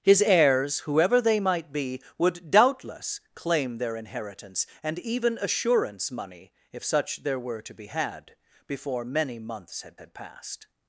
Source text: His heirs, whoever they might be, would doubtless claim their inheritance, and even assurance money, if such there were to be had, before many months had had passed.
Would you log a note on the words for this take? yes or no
no